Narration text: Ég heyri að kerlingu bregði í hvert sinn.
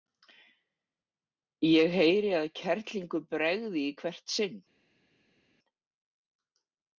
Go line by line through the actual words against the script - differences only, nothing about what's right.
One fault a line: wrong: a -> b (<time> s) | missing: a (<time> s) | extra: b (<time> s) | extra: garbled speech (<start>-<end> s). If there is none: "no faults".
no faults